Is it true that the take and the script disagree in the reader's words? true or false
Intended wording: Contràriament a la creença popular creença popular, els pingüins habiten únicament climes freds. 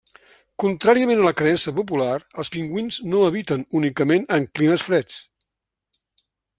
true